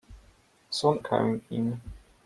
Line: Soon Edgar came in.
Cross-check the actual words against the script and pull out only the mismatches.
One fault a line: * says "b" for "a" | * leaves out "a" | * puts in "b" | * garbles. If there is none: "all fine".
* leaves out "Edgar"